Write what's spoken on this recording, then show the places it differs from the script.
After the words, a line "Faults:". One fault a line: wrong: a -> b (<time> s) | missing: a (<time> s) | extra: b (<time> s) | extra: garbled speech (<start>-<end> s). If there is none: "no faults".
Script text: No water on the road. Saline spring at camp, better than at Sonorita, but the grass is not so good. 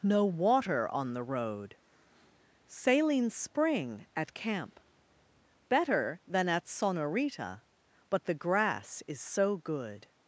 No water on the road. Saline spring at camp, better than at Sonorita, but the grass is so good.
Faults:
missing: not (9.2 s)